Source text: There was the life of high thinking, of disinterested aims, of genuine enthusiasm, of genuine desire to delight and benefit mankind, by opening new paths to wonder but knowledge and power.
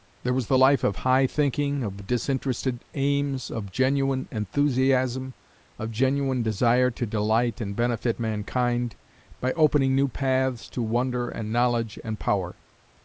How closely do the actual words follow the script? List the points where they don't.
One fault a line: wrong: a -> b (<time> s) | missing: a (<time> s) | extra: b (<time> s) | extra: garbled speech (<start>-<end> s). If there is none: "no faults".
wrong: but -> and (11.3 s)